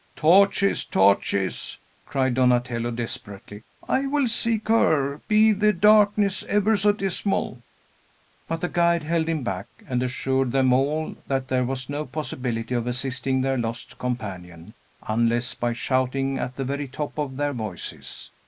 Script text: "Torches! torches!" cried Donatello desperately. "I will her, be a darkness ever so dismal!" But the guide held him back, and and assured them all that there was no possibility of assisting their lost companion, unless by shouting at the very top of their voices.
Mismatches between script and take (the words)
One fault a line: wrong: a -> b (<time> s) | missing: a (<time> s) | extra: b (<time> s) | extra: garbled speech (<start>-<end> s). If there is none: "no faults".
extra: seek (4.3 s)
wrong: a -> the (5.5 s)
missing: and (10.0 s)